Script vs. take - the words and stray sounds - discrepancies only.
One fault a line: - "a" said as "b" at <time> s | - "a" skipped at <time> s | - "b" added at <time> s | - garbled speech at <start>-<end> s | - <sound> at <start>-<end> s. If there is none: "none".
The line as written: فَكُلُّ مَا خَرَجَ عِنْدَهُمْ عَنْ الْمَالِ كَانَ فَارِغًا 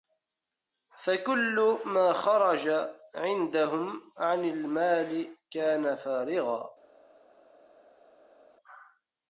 none